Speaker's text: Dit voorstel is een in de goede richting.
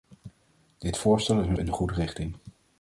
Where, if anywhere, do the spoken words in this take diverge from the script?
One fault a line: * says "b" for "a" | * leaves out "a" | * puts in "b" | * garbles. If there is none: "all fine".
all fine